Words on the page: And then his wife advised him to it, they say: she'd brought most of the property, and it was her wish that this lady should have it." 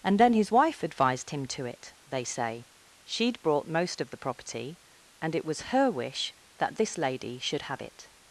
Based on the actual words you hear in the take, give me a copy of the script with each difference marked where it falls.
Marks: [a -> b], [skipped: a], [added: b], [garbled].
And then his wife advised him to it, they say: she'd brought most of the property, and it was her wish that this lady should have it."